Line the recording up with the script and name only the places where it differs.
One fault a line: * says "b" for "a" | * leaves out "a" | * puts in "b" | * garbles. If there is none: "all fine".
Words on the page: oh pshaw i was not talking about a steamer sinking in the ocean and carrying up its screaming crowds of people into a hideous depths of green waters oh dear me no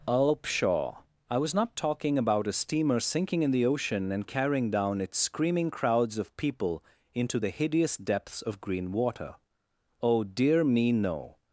* says "down" for "up"
* says "the" for "a"
* says "water" for "waters"